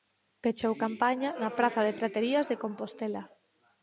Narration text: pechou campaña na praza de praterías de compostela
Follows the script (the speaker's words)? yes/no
yes